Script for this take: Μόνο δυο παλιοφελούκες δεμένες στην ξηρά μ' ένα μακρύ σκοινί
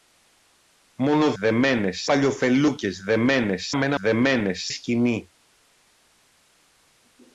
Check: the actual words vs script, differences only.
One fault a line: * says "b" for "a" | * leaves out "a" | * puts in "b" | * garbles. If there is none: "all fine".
* says "δεμένες" for "δυο"
* leaves out "στην ξηρά"
* says "δεμένες" for "μακρύ"